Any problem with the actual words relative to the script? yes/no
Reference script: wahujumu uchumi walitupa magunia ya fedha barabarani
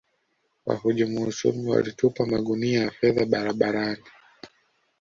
no